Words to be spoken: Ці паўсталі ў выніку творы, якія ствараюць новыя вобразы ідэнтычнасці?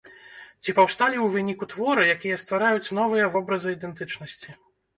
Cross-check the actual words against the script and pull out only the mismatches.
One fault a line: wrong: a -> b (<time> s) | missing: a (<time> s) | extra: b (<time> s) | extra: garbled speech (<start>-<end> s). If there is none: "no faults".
no faults